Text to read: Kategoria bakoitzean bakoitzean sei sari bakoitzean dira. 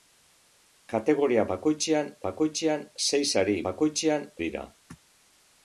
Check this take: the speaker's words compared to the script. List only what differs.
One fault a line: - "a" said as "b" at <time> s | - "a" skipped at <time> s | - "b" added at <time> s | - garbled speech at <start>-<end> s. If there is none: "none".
none